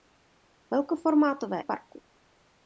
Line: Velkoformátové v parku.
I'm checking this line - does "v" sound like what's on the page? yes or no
yes